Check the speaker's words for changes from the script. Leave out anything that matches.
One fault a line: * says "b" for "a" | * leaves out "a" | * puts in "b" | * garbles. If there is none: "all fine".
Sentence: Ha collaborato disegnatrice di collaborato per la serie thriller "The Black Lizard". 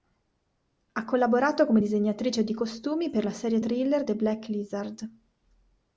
* puts in "come"
* says "costumi" for "collaborato"